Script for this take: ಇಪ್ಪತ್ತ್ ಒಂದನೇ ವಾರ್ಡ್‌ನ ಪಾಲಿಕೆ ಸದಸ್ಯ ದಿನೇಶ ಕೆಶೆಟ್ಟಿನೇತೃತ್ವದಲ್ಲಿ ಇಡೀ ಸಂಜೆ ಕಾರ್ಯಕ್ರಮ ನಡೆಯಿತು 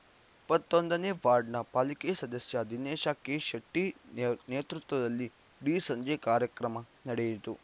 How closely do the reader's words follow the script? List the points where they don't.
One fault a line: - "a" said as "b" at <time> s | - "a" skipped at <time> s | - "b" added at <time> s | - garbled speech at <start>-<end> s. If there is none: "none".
none